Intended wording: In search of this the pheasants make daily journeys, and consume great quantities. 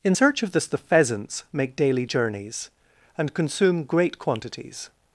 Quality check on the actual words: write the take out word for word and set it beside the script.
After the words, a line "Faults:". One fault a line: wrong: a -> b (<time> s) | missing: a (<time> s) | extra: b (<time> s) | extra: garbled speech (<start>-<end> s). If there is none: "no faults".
In search of this the pheasants make daily journeys, and consume great quantities.
Faults:
no faults